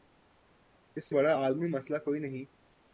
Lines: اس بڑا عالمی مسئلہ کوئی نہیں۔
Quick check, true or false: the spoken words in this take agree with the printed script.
true